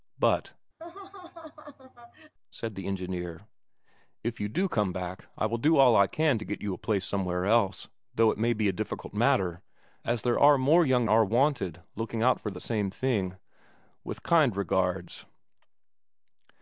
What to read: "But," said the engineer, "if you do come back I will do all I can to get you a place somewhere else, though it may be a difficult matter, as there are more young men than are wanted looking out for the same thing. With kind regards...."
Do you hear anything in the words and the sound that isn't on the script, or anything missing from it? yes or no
yes